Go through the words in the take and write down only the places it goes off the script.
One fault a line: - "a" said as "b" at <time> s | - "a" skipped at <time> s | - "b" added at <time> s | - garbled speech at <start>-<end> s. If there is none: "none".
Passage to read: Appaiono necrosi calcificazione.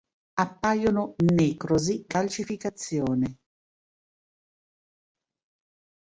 none